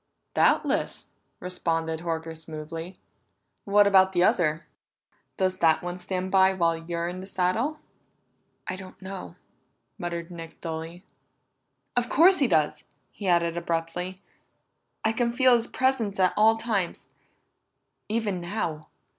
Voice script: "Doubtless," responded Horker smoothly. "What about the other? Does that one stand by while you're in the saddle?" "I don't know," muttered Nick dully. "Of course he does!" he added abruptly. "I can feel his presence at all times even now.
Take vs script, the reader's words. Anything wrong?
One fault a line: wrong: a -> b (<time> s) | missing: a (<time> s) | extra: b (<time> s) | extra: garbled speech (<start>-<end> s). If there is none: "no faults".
no faults